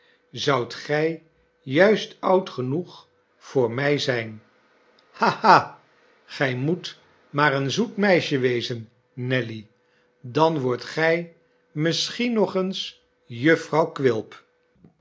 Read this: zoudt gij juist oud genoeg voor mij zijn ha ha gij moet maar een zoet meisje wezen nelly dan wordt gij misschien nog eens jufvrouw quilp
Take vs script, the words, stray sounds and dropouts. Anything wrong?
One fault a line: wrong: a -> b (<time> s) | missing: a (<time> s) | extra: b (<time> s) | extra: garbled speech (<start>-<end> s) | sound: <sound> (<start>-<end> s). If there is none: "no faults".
no faults